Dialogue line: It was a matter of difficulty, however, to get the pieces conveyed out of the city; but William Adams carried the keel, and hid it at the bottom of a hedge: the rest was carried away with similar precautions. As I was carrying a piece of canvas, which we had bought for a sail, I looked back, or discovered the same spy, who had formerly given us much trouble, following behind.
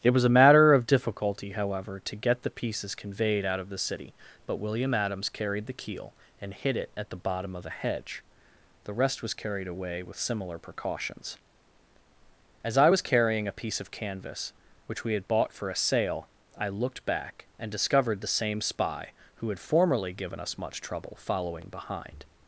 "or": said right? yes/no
no